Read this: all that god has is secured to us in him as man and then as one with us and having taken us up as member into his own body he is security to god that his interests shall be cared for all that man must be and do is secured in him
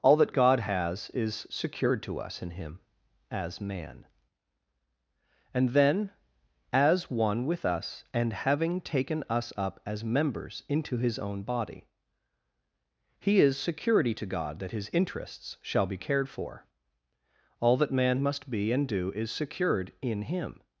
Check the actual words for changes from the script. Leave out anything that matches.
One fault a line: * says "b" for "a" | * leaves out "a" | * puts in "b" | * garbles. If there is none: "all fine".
* says "members" for "member"